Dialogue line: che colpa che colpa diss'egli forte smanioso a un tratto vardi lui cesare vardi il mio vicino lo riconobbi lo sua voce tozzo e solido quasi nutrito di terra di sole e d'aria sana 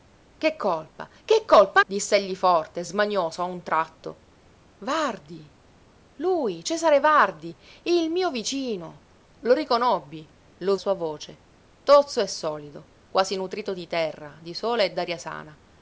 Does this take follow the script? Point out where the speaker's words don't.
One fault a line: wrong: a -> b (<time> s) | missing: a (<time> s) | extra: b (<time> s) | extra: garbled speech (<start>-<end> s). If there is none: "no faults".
no faults